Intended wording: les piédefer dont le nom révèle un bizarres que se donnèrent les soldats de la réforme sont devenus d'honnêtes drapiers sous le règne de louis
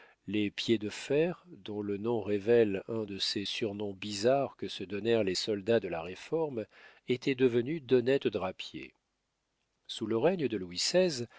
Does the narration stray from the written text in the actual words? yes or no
yes